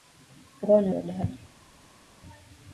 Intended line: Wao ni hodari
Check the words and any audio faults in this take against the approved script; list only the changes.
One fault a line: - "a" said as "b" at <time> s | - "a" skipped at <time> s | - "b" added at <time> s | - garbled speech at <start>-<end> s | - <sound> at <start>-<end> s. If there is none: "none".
none